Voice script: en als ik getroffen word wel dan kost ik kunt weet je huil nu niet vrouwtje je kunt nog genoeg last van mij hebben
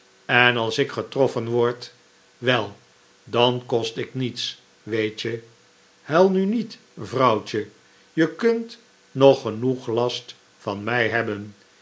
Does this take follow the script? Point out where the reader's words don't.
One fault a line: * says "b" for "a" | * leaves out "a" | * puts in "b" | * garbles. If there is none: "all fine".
* says "niets" for "kunt"